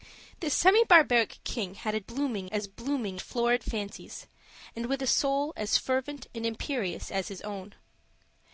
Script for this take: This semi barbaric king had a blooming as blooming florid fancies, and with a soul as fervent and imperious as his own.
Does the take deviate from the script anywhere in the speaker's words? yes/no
no